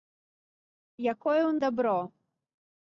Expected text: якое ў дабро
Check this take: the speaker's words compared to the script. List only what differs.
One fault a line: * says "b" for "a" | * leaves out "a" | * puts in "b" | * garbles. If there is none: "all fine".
all fine